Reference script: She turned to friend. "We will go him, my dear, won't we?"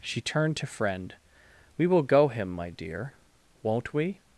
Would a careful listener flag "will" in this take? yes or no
no